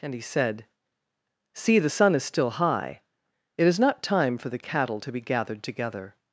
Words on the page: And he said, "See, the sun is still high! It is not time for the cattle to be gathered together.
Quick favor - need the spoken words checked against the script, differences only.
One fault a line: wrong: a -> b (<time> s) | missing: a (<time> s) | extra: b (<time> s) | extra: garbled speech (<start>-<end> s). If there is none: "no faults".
no faults